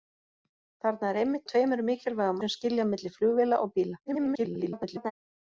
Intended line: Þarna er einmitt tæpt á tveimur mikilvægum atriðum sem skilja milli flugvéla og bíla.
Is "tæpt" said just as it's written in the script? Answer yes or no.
no